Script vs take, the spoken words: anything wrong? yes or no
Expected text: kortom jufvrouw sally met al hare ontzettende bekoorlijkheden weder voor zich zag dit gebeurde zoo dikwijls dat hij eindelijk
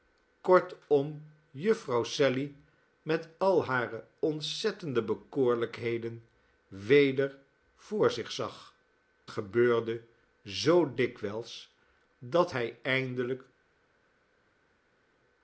yes